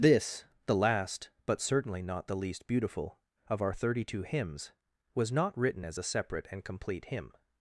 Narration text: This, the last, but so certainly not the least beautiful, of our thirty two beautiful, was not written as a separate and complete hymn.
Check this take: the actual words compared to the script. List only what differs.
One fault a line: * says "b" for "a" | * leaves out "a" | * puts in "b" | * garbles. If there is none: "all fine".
* leaves out "so"
* says "hymns" for "beautiful"